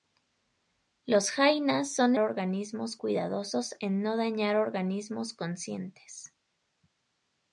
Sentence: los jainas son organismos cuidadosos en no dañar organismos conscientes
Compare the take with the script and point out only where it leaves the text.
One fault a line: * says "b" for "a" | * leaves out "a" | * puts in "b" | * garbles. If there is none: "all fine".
all fine